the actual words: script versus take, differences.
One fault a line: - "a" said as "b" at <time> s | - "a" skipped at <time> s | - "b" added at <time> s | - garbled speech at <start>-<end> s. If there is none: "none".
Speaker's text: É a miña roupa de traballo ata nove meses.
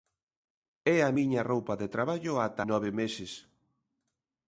none